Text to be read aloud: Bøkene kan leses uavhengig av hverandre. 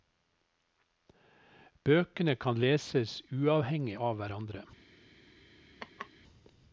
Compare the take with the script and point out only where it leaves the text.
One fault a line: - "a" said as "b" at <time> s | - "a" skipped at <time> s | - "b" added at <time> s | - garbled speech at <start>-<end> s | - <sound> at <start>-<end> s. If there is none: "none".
- laugh at 5.8-6.1 s